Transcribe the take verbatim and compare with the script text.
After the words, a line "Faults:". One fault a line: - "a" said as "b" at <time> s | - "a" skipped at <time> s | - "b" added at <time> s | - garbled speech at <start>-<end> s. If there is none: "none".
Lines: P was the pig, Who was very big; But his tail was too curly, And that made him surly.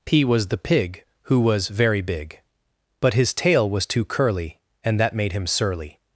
P was the pig, Who was very big; But his tail was too curly, And that made him surly.
Faults:
none